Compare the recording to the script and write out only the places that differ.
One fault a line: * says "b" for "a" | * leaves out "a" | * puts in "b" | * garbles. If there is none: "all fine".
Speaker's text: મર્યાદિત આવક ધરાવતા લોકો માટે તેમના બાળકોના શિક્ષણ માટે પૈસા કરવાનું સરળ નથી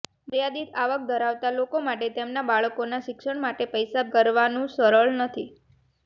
all fine